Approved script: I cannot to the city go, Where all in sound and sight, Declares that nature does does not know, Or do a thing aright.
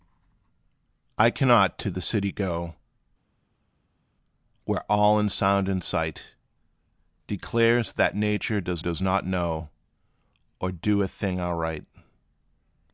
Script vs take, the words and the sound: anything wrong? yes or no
no